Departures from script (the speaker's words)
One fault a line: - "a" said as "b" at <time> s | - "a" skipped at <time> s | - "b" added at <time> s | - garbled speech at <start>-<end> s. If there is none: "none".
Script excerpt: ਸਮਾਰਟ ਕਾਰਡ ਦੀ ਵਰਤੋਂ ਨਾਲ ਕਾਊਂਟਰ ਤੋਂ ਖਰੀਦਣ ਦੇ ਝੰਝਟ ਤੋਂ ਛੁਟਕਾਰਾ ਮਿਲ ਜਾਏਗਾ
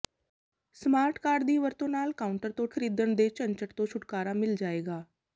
none